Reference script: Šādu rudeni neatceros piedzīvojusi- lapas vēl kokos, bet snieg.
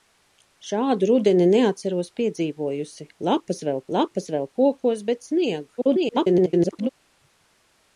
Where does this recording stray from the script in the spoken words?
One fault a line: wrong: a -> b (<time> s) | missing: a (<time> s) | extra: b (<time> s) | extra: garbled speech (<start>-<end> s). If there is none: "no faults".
extra: lapas vēl (4.0 s)
extra: garbled speech (5.8-6.9 s)